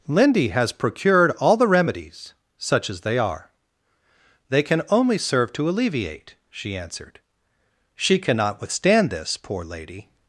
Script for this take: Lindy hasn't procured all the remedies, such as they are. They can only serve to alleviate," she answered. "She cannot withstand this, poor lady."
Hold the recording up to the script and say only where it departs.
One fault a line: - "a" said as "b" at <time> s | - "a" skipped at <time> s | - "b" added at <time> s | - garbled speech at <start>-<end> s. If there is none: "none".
- "hasn't" said as "has" at 0.5 s